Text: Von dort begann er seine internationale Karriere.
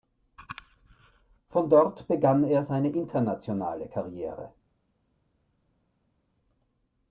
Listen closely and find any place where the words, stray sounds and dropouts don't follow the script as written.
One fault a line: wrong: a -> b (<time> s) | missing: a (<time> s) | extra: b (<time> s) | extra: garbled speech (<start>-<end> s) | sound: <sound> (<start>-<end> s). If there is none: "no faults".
no faults